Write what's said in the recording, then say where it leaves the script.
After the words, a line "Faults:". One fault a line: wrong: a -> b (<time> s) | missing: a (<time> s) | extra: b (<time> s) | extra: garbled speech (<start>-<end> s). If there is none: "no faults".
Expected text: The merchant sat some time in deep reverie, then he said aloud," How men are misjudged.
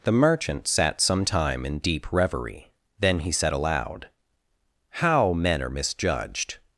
The merchant sat some time in deep reverie, then he said aloud," How men are misjudged.
Faults:
no faults